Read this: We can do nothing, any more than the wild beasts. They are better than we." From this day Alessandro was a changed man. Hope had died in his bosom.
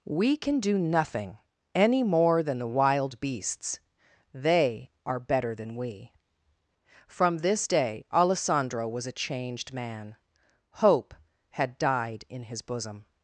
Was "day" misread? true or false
false